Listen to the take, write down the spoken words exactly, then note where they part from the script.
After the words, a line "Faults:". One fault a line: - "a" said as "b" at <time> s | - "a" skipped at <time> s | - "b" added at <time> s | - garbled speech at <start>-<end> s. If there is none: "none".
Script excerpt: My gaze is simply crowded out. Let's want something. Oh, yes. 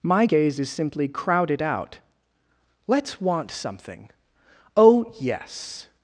My gaze is simply crowded out. Let's want something. Oh, yes.
Faults:
none